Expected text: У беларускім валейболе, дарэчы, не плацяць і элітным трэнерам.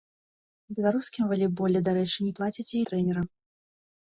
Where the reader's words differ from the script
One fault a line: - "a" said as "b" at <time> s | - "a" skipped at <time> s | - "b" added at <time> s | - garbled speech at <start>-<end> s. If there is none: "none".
- "элітным" skipped at 2.8 s